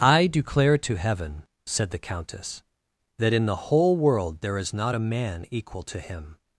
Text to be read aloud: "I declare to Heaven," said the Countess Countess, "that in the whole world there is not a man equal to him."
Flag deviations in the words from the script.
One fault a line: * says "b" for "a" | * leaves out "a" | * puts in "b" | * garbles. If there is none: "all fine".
* leaves out "Countess"